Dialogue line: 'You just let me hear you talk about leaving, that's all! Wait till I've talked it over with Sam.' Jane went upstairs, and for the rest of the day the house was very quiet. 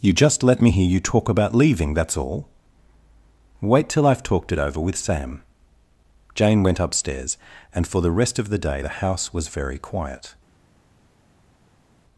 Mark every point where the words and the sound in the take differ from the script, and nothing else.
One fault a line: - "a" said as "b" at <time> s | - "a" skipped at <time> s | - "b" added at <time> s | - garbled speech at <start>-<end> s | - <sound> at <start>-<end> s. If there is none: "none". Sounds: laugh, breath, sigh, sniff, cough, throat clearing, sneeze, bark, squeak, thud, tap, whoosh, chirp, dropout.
none